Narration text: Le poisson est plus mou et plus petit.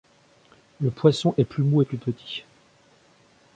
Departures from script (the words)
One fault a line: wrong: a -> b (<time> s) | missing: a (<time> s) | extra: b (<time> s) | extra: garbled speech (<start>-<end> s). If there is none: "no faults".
no faults